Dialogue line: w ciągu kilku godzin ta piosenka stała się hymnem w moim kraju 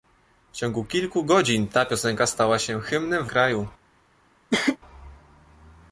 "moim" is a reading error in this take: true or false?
true